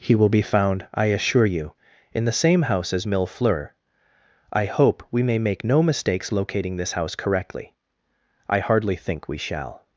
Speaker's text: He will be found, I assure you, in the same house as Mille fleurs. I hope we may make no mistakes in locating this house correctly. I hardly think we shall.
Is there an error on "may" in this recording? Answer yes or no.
no